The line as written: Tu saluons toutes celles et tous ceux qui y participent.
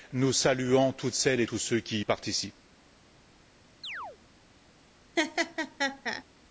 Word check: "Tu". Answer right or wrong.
wrong